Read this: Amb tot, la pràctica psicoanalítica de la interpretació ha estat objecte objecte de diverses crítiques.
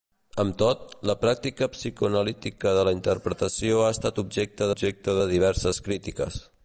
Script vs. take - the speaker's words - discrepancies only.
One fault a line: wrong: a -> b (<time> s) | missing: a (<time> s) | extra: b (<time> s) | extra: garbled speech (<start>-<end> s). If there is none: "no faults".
no faults